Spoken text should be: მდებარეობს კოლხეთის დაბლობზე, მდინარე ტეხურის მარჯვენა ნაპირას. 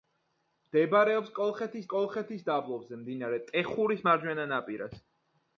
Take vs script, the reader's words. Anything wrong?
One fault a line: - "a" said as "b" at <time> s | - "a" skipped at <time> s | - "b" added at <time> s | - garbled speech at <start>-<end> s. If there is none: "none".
- "კოლხეთის" added at 1.9 s